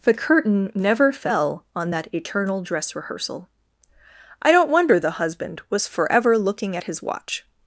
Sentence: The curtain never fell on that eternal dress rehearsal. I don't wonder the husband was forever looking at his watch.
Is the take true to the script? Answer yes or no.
yes